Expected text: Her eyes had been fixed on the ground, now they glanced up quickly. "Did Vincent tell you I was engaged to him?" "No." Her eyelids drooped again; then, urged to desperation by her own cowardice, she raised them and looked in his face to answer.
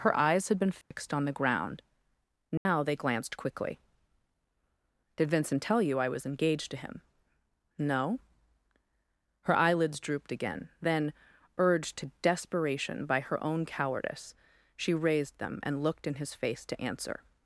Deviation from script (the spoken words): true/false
true